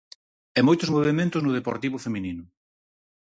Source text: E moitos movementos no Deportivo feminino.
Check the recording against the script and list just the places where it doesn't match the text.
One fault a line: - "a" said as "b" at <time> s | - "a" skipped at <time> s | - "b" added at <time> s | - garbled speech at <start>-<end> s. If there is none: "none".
none